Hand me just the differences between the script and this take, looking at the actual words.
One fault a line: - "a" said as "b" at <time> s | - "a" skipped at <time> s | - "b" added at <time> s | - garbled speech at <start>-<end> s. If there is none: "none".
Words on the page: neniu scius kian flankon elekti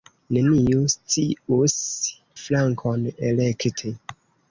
- "kian" skipped at 1.8 s